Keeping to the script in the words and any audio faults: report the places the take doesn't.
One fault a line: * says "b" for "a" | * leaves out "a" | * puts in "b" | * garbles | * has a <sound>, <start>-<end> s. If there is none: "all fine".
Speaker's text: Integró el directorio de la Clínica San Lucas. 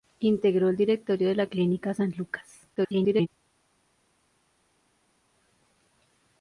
* garbles